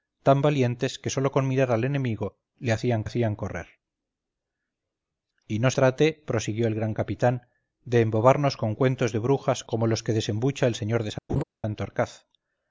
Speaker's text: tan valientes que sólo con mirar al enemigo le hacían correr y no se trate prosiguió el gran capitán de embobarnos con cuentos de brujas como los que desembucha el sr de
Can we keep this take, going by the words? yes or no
no